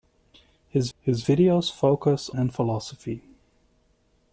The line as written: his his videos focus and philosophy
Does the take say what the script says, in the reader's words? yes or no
yes